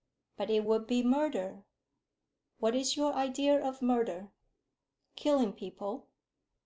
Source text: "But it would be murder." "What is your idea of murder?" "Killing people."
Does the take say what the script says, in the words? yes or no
yes